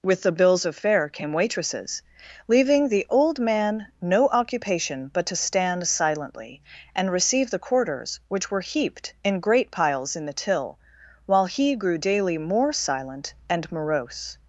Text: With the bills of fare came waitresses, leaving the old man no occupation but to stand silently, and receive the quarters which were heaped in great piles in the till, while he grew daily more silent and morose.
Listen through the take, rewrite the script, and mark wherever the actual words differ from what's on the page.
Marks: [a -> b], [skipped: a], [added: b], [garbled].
With the bills of fare came waitresses, leaving the old man no occupation but to stand silently, and receive the quarters which were heaped in great piles in the till, while he grew daily more silent and morose.